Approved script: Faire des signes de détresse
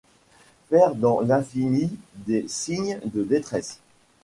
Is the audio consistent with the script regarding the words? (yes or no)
no